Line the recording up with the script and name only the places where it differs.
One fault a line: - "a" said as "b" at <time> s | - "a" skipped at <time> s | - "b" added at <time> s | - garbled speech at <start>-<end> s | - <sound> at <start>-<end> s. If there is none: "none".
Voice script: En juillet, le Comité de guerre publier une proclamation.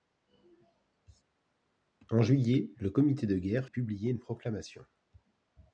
none